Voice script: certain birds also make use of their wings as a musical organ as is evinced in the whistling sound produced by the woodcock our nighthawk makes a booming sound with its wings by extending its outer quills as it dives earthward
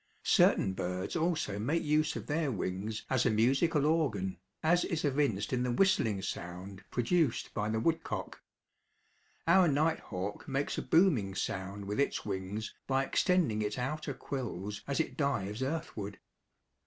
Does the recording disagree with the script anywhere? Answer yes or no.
no